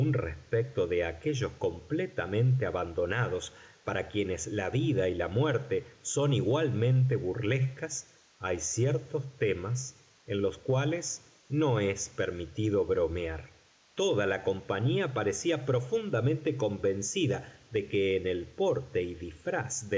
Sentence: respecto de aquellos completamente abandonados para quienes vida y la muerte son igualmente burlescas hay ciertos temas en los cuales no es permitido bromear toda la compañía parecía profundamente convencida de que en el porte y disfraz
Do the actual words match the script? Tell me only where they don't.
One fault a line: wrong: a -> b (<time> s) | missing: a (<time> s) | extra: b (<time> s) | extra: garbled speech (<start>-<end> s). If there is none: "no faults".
extra: la (4.5 s)